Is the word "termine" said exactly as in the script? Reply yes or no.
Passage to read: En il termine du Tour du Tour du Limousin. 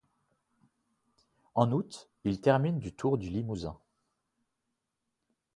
yes